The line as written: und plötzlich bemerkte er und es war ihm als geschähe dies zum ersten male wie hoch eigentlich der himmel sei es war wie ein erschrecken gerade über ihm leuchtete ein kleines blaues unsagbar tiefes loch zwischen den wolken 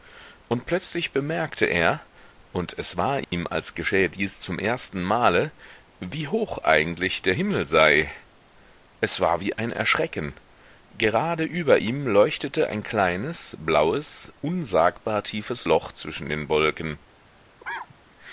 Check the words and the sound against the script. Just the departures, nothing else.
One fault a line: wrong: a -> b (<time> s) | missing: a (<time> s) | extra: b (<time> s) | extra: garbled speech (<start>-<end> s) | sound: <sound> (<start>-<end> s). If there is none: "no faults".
sound: dropout (3.2-3.3 s)
sound: cough (17.6-17.9 s)